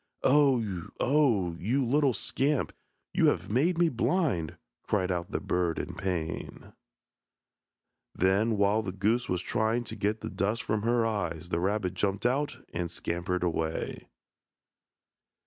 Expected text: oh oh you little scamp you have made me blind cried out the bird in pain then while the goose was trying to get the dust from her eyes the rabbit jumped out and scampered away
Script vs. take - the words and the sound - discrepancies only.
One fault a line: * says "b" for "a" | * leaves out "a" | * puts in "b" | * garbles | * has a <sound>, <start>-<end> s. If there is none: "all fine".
all fine